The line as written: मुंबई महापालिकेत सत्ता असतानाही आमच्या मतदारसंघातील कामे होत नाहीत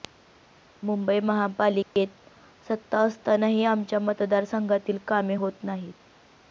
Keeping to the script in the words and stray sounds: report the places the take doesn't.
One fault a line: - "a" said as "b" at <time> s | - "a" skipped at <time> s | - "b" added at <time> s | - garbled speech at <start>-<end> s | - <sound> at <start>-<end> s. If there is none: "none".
- dropout at 1.8-2.0 s